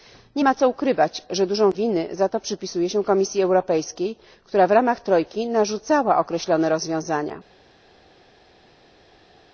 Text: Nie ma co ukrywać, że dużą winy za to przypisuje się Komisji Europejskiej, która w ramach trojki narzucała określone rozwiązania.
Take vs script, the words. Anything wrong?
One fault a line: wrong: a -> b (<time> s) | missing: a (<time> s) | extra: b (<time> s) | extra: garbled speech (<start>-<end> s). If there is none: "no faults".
no faults